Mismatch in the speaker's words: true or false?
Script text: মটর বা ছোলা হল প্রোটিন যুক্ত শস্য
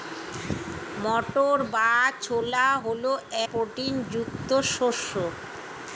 false